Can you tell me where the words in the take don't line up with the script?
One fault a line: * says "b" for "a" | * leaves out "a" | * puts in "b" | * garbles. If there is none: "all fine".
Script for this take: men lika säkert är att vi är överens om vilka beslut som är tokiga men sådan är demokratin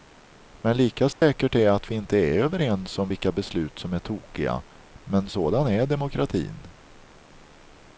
* puts in "inte"